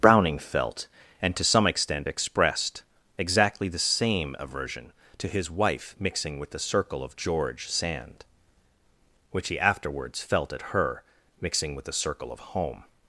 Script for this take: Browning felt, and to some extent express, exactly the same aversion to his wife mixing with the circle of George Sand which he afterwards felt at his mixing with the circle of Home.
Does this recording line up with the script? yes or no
no